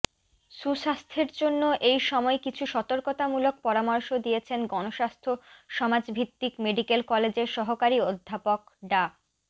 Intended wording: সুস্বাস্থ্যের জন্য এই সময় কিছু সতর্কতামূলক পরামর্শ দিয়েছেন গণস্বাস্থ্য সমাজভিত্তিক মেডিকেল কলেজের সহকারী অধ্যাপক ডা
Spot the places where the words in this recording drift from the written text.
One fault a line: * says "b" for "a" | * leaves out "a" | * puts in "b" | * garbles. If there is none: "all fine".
all fine